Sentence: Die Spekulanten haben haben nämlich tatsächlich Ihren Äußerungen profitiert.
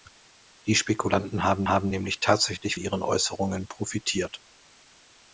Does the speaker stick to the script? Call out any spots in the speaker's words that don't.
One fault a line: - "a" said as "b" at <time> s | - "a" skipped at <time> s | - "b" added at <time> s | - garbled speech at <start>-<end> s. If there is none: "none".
none